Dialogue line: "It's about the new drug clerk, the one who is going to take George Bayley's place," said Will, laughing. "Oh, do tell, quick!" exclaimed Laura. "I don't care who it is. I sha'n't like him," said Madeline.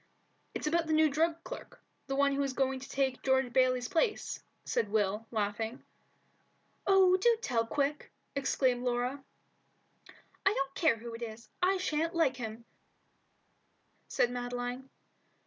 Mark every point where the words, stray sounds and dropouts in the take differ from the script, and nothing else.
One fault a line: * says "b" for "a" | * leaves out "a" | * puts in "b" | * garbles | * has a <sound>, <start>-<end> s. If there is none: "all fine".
all fine